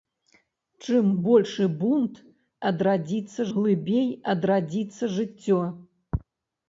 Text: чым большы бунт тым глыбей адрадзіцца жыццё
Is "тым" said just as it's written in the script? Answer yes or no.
no